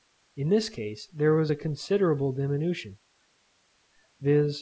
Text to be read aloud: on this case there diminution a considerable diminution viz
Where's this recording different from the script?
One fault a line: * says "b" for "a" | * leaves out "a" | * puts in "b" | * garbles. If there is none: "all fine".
* says "in" for "on"
* says "was" for "diminution"